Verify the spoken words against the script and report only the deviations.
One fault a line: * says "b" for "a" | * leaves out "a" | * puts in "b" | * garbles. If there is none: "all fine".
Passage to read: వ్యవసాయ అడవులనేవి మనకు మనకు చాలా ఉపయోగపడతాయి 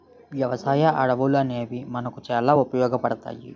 * leaves out "మనకు"